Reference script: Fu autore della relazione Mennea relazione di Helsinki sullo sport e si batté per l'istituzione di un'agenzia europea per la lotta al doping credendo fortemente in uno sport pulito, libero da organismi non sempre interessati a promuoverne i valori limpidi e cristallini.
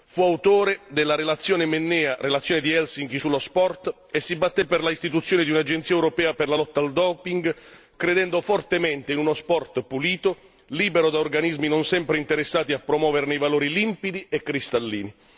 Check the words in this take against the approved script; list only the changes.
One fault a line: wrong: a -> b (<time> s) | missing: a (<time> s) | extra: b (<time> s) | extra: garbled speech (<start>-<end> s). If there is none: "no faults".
no faults